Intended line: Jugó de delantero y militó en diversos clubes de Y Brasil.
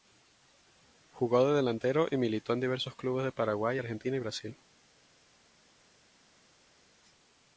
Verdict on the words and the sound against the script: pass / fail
fail